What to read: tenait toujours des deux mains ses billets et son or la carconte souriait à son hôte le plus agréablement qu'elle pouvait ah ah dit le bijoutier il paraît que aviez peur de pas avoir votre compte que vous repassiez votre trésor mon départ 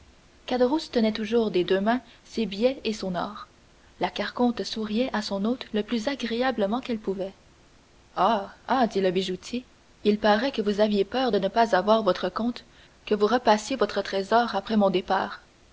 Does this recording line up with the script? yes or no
no